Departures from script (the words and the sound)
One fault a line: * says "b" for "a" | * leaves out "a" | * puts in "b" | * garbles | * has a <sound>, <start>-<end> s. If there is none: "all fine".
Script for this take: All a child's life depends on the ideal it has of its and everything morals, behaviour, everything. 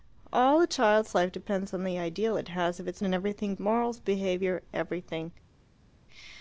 all fine